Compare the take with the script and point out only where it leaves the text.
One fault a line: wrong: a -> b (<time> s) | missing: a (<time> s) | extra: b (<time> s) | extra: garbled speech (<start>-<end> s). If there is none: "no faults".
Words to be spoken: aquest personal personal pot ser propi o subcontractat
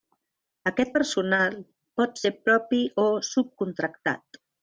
missing: personal (1.6 s)